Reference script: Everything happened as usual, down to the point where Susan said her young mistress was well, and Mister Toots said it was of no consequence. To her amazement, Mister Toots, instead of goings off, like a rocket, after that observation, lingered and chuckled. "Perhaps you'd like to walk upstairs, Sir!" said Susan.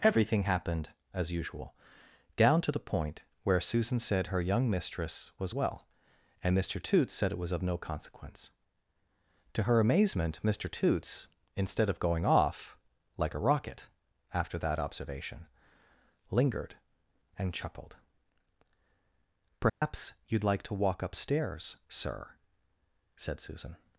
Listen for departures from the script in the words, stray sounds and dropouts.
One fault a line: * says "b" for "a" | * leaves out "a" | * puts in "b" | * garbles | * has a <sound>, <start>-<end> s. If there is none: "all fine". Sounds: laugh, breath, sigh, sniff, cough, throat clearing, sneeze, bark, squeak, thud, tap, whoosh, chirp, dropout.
* says "going" for "goings"
* has a dropout, 19.7-19.8 s